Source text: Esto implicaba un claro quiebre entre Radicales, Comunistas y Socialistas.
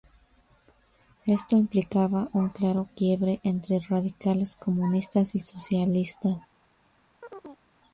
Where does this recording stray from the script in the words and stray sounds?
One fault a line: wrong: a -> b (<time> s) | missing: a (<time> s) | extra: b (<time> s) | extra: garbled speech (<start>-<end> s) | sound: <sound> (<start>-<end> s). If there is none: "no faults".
sound: chirp (7.2-7.6 s)